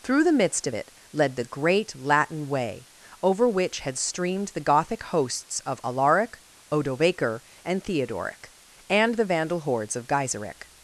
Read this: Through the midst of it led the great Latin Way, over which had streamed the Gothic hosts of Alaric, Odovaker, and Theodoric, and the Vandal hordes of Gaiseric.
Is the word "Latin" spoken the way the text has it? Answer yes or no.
yes